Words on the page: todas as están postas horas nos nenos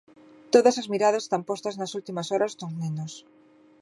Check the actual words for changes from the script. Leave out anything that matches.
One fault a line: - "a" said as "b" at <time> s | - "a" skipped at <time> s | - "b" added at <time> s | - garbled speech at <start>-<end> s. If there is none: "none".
- "miradas" added at 0.9 s
- "nas últimas" added at 1.8 s